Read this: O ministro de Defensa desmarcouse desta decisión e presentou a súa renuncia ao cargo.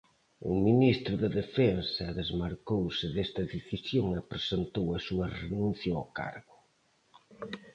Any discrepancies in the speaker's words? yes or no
no